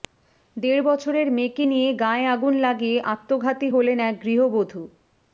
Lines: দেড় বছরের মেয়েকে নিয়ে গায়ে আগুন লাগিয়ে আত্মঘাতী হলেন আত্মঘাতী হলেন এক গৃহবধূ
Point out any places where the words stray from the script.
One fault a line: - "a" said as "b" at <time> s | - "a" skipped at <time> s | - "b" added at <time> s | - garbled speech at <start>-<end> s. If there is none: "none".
- "আত্মঘাতী হলেন" skipped at 4.0 s